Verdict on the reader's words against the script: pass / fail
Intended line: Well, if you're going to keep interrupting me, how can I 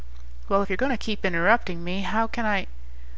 pass